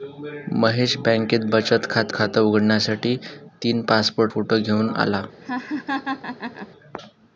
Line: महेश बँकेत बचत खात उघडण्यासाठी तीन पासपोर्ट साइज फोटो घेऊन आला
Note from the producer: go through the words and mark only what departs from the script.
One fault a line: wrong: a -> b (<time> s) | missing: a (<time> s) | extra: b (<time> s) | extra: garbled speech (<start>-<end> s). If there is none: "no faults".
extra: खात (2.1 s)
missing: साइज (4.3 s)